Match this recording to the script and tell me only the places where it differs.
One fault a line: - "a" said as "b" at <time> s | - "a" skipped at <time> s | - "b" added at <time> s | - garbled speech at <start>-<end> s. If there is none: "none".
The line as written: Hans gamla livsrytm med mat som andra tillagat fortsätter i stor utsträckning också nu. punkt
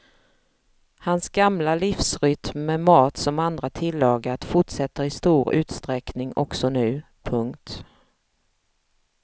none